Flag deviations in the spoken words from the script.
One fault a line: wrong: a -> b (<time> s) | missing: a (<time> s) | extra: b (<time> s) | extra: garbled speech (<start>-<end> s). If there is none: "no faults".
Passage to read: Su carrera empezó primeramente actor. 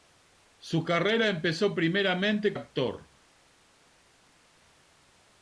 no faults